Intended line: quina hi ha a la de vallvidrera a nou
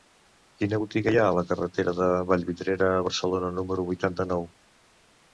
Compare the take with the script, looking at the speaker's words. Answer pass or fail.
fail